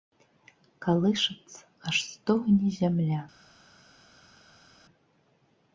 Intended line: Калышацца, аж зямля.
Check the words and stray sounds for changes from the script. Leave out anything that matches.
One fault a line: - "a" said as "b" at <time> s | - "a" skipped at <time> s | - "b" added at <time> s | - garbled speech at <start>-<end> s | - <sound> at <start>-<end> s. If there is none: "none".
- "стогне" added at 2.1 s